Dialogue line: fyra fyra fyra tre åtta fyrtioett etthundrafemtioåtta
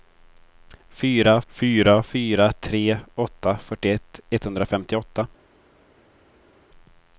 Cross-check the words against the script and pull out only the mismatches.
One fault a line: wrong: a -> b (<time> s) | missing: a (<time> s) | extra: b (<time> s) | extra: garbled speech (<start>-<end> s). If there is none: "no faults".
no faults